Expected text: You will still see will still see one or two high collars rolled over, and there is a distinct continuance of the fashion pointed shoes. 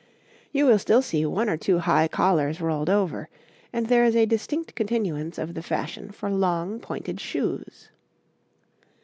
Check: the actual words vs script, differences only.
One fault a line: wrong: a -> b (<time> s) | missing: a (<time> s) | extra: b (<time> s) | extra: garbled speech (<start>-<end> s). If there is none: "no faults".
missing: will still see (1.3 s)
extra: for long (6.1 s)